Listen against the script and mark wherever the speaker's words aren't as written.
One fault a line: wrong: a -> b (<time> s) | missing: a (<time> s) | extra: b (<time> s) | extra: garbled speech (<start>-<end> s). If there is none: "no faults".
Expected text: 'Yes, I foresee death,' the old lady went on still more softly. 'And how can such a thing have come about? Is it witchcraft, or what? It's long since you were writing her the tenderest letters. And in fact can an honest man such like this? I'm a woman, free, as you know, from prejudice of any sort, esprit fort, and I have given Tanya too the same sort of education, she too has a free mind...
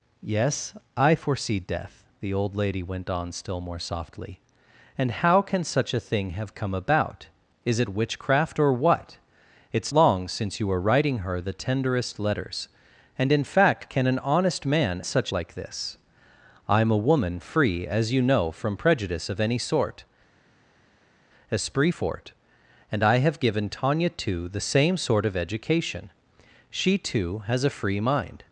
no faults